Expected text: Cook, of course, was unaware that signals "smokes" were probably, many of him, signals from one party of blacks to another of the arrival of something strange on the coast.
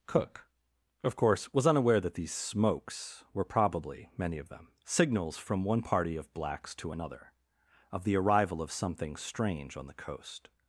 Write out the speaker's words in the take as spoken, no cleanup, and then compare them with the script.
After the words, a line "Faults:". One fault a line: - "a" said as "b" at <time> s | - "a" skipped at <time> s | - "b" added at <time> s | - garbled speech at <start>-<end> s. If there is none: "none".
Cook, of course, was unaware that these "smokes" were probably, many of them, signals from one party of blacks to another of the arrival of something strange on the coast.
Faults:
- "signals" said as "these" at 2.1 s
- "him" said as "them" at 4.5 s